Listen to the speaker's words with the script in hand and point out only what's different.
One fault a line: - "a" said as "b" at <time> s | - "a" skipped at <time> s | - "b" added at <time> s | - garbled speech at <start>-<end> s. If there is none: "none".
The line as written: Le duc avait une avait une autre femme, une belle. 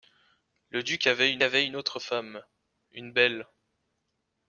none